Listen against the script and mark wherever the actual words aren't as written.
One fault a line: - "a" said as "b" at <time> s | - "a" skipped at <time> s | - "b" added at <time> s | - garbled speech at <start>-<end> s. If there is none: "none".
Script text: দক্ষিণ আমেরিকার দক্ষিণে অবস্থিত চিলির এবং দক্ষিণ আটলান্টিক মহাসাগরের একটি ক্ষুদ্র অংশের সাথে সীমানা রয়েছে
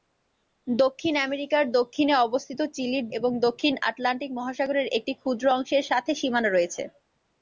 none